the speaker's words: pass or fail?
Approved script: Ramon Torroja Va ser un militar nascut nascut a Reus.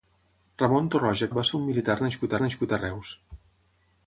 pass